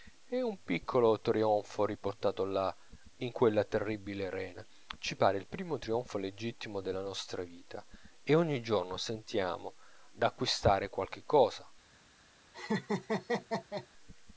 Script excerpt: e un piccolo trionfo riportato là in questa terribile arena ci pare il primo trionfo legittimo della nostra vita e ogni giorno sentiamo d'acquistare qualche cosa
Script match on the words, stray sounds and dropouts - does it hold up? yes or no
no